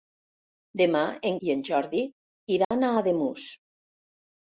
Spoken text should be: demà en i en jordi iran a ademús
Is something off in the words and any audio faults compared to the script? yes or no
yes